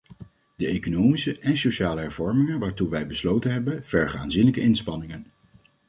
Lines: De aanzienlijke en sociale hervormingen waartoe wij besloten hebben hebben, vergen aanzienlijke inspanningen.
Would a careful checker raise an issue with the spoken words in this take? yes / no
yes